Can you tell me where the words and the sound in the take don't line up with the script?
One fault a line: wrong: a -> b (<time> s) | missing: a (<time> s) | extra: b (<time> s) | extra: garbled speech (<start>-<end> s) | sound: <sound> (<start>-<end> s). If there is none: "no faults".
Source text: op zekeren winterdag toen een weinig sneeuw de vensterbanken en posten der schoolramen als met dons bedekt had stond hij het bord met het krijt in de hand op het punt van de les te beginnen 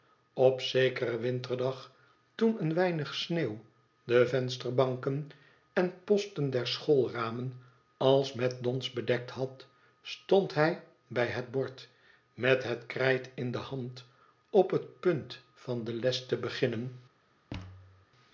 extra: bij (11.1 s)
sound: thud (17.5-18.1 s)